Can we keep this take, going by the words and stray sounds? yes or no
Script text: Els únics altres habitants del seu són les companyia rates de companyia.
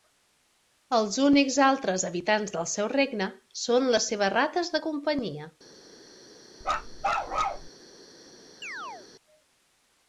no